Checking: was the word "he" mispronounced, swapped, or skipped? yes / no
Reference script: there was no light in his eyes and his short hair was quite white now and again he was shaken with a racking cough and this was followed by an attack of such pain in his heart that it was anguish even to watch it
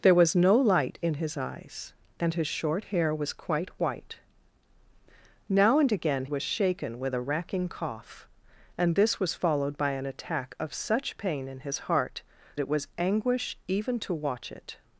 yes